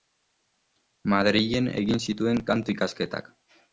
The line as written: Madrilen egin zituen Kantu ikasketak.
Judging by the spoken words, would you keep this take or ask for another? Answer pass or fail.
pass